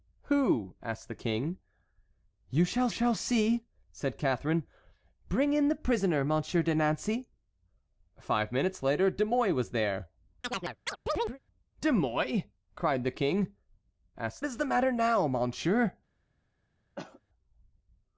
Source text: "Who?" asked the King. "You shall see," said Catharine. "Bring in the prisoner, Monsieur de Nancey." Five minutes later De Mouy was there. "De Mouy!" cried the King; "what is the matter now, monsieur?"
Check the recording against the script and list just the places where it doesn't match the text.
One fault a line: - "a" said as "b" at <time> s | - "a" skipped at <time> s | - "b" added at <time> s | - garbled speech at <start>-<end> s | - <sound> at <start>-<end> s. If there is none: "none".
- "shall" added at 2.9 s
- chirp at 10.4-11.4 s
- "what" said as "asked" at 14.2 s
- cough at 17.0-17.2 s